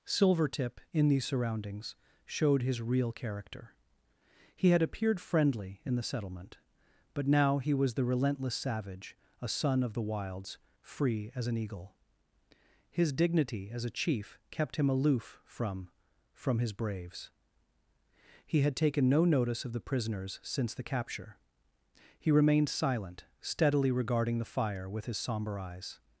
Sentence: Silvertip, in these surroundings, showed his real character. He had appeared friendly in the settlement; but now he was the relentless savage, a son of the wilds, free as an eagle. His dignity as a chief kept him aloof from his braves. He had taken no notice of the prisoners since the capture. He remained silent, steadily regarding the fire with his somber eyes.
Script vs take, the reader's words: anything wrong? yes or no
yes